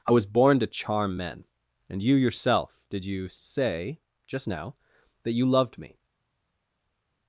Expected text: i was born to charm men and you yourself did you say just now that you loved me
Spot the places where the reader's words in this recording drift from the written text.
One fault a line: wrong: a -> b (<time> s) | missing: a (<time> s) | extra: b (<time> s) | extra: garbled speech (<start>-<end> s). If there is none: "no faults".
no faults